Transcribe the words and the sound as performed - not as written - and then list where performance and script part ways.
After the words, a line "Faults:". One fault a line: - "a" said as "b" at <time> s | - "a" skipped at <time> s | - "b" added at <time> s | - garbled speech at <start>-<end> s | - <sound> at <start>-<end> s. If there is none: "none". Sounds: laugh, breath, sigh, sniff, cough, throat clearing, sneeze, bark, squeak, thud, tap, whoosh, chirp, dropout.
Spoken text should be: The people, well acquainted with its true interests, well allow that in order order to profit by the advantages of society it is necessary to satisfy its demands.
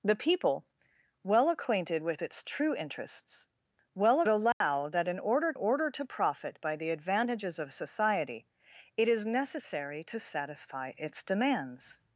The people, well acquainted with its true interests, well allow that in order order to profit by the advantages of society it is necessary to satisfy its demands.
Faults:
- dropout at 4.5-4.6 s